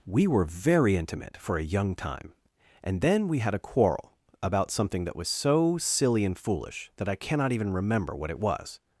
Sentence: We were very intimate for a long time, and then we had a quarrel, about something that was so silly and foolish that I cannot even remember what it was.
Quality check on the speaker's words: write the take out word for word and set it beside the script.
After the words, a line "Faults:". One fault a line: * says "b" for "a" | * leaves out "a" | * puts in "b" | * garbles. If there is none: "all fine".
We were very intimate for a young time, and then we had a quarrel, about something that was so silly and foolish that I cannot even remember what it was.
Faults:
* says "young" for "long"